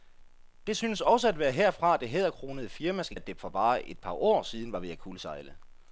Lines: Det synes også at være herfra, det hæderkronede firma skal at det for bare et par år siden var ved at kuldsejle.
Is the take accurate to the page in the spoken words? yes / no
yes